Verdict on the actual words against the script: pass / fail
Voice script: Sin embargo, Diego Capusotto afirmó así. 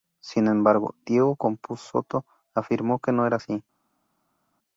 fail